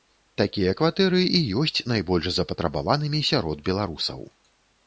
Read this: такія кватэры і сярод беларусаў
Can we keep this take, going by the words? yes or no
no